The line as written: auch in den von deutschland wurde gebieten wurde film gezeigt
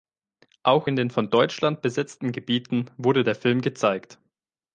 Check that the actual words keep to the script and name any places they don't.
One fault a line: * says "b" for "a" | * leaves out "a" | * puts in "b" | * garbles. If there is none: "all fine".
* says "besetzten" for "wurde"
* puts in "der"